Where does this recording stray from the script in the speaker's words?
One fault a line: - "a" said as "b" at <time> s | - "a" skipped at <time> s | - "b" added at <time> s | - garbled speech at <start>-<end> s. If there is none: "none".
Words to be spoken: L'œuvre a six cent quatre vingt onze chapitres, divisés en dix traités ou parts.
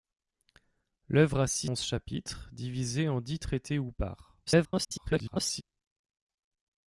- "cent quatre vingt" skipped at 1.7 s
- garbled speech at 4.5-5.6 s